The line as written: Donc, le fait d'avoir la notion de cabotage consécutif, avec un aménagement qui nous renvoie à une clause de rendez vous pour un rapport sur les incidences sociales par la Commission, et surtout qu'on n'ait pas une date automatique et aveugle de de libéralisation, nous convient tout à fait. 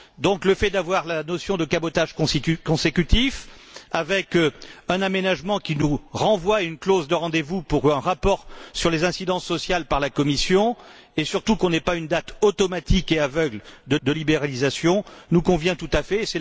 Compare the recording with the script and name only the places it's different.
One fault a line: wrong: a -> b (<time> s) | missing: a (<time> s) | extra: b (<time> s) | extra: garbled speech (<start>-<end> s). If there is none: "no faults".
no faults